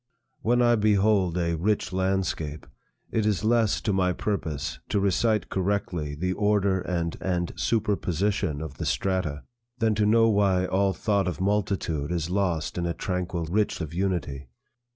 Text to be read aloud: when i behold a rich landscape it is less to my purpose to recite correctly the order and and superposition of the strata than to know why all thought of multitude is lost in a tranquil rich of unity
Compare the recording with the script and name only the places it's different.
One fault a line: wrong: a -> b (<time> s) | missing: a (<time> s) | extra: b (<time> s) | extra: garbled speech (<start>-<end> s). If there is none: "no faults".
no faults